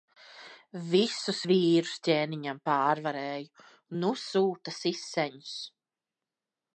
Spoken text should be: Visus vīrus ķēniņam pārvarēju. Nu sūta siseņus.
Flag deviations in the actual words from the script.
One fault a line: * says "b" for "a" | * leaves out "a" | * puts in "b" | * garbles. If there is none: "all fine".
all fine